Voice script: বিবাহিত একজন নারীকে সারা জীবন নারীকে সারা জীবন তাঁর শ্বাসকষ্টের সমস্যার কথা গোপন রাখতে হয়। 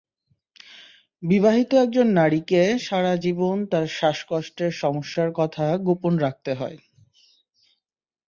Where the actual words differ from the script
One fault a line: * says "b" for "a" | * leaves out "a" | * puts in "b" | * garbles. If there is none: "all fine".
* leaves out "নারীকে সারা জীবন"